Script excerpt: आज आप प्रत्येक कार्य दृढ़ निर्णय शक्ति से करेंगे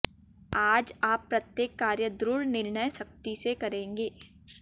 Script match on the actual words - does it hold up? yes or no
yes